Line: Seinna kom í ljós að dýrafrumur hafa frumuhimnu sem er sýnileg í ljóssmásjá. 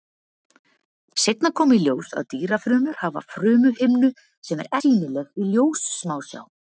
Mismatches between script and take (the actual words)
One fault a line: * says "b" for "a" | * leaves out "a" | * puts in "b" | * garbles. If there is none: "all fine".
all fine